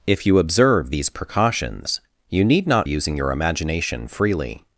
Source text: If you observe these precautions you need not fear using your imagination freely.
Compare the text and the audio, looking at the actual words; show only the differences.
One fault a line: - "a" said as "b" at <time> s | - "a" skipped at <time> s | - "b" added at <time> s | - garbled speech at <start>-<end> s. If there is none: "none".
- "fear" skipped at 2.9 s